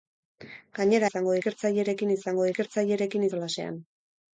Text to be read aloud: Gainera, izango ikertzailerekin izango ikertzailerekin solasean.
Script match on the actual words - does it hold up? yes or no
yes